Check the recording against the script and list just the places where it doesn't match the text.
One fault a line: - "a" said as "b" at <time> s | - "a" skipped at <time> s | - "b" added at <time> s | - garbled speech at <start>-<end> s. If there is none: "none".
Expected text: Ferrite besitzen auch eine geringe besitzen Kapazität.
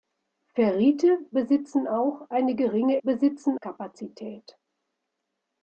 none